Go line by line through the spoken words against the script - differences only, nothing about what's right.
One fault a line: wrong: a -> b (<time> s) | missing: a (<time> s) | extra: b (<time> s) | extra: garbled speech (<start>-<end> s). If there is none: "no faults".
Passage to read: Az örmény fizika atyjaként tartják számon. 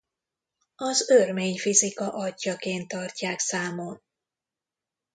no faults